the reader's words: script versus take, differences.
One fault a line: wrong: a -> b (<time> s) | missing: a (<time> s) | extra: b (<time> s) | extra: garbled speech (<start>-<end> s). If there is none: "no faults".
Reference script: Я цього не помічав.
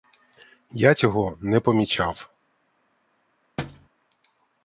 no faults